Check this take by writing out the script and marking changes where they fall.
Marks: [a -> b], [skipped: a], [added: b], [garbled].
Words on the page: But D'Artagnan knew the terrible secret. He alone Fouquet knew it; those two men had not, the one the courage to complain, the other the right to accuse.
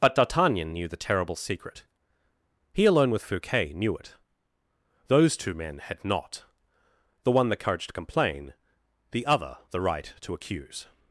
But D'Artagnan knew the terrible secret. He alone [added: with] Fouquet knew it; those two men had not, the one the courage to complain, the other the right to accuse.